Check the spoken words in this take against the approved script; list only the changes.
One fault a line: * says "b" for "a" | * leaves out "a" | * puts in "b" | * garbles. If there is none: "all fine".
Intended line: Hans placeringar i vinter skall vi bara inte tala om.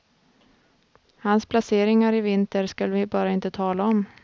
all fine